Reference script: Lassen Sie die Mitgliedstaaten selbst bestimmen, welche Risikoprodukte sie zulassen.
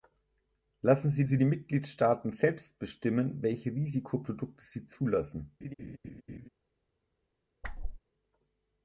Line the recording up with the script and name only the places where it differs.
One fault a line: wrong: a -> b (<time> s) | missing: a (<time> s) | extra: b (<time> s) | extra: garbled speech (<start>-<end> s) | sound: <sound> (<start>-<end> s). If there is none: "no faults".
extra: Sie (1.2 s)
sound: laugh (5.6-6.5 s)
sound: whoosh (7.6-8.0 s)